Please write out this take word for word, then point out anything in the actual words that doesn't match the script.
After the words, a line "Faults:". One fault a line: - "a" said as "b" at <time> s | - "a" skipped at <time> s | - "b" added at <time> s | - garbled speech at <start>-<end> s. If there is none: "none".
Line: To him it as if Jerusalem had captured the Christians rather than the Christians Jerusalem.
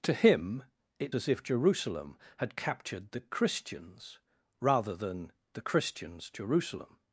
To him it as if Jerusalem had captured the Christians rather than the Christians Jerusalem.
Faults:
none